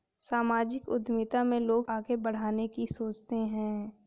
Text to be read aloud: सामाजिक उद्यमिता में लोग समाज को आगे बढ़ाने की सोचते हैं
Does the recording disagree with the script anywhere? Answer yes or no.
yes